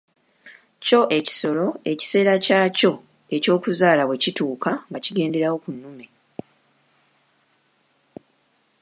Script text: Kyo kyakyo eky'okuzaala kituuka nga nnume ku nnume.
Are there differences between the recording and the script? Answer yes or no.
yes